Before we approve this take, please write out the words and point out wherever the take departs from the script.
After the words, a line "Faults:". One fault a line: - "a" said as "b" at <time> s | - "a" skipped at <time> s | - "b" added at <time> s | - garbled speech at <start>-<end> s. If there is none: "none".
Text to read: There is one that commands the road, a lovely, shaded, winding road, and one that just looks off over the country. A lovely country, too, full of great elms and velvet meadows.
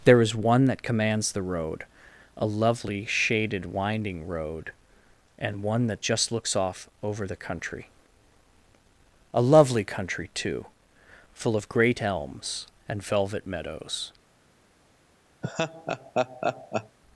There is one that commands the road, a lovely, shaded, winding road, and one that just looks off over the country. A lovely country, too, full of great elms and velvet meadows.
Faults:
none